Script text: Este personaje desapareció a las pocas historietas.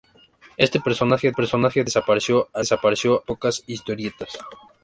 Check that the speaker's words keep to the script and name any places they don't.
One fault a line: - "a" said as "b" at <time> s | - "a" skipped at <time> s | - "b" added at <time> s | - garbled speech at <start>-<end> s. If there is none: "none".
- "personaje" added at 1.3 s
- "las" said as "desapareció" at 2.6 s